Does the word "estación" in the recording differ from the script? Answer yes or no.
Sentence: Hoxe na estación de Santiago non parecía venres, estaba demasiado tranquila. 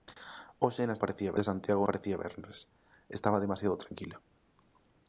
yes